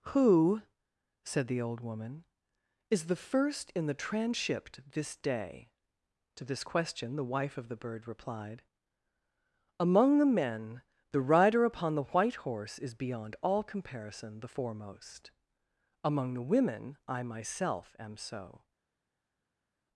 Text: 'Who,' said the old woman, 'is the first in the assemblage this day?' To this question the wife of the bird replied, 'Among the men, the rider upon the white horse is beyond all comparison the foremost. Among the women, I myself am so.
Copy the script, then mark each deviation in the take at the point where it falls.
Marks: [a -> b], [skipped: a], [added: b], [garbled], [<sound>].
'Who,' said the old woman, 'is the first in the [assemblage -> transhipped] this day?' To this question the wife of the bird replied, 'Among the men, the rider upon the white horse is beyond all comparison the foremost. Among the women, I myself am so.